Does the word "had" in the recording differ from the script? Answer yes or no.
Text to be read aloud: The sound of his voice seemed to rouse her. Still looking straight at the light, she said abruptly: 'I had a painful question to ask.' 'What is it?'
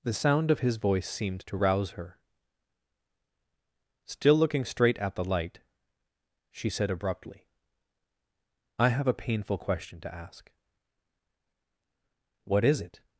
yes